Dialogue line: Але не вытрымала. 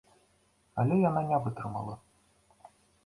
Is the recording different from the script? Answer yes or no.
yes